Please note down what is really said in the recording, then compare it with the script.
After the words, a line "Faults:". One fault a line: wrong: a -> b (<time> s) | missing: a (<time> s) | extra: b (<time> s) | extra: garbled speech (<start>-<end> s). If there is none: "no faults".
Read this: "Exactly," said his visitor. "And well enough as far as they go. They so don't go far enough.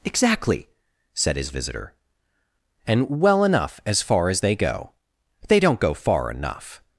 "Exactly," said his visitor. "And well enough as far as they go. They don't go far enough.
Faults:
missing: so (5.6 s)